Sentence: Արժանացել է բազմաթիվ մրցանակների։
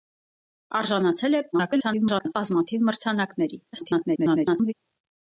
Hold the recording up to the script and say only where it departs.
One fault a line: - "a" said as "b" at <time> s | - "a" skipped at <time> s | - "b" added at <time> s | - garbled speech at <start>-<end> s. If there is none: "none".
- garbled speech at 1.5-2.3 s
- garbled speech at 3.7-4.7 s